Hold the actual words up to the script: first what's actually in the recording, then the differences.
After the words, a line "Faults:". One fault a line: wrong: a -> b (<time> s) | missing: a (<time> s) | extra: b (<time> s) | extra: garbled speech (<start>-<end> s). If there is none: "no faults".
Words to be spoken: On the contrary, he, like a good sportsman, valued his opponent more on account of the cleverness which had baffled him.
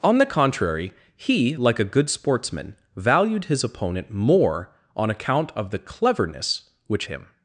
On the contrary, he, like a good sportsman, valued his opponent more on account of the cleverness which him.
Faults:
missing: had baffled (7.1 s)